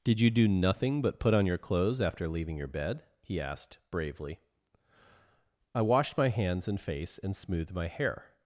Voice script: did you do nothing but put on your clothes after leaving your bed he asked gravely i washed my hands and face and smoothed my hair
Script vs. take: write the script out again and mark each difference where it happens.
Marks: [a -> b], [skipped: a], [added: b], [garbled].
did you do nothing but put on your clothes after leaving your bed he asked [gravely -> bravely] i washed my hands and face and smoothed my hair